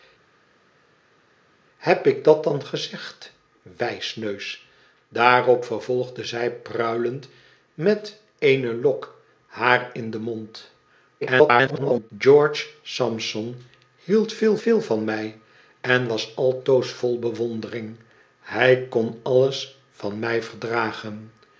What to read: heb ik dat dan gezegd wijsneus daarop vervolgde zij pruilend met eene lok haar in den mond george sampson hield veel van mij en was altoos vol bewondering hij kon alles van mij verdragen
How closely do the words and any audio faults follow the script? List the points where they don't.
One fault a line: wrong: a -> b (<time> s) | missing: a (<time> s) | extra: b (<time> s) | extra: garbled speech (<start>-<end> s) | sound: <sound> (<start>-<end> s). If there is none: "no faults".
extra: garbled speech (11.2-12.1 s)
extra: veel (14.6 s)